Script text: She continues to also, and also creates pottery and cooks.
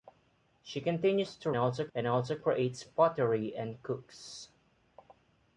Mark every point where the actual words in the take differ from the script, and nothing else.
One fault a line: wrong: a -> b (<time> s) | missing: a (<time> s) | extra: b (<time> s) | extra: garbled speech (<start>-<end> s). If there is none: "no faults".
no faults